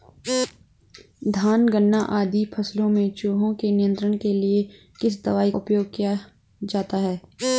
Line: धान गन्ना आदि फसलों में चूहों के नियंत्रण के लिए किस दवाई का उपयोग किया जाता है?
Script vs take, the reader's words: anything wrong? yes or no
yes